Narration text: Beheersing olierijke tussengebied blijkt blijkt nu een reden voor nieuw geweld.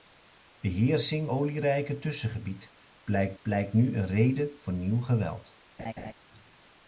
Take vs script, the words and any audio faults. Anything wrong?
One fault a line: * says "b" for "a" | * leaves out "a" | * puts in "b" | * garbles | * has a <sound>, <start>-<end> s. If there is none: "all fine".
* has a laugh, 5.8-6.1 s